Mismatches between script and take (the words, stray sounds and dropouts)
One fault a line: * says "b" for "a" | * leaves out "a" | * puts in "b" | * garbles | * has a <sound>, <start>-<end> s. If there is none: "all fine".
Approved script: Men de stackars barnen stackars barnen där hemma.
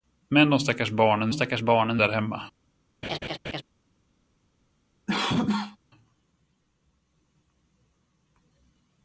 * has a laugh, 3.0-3.6 s
* has a cough, 5.1-5.8 s